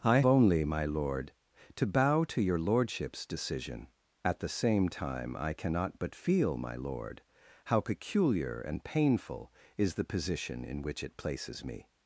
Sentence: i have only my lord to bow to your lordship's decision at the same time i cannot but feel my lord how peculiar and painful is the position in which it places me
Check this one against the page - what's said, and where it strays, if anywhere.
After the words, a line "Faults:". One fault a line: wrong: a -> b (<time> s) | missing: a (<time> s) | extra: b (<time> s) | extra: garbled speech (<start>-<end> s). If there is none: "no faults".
i only my lord to bow to your lordship's decision at the same time i cannot but feel my lord how peculiar and painful is the position in which it places me
Faults:
missing: have (0.2 s)